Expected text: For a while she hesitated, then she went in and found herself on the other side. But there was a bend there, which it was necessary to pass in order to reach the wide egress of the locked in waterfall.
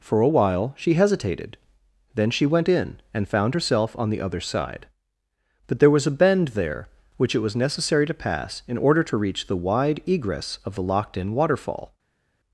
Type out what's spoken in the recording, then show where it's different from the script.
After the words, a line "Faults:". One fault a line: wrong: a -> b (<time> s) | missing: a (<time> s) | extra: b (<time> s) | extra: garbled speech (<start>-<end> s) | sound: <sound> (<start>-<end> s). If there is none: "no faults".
For a while she hesitated, then she went in and found herself on the other side. But there was a bend there, which it was necessary to pass in order to reach the wide egress of the locked in waterfall.
Faults:
no faults